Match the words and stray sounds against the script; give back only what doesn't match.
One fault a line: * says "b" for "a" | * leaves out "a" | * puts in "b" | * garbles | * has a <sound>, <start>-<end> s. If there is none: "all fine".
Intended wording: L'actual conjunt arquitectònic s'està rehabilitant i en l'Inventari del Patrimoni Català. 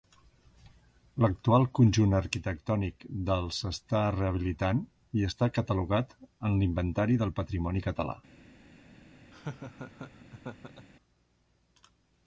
* puts in "del"
* puts in "està catalogat"
* has a laugh, 9.3-10.9 s